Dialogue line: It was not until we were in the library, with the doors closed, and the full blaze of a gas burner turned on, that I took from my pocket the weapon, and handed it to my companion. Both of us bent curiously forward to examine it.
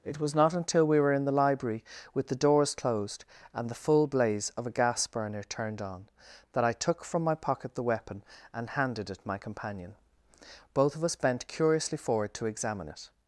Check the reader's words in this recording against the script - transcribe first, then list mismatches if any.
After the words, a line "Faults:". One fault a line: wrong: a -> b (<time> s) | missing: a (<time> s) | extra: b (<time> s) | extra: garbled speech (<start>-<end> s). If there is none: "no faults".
It was not until we were in the library, with the doors closed, and the full blaze of a gas burner turned on, that I took from my pocket the weapon, and handed it my companion. Both of us bent curiously forward to examine it.
Faults:
missing: to (9.2 s)